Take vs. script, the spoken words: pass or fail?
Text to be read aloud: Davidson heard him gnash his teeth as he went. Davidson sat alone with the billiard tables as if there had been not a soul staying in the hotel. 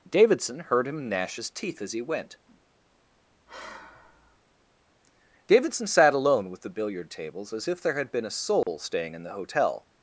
fail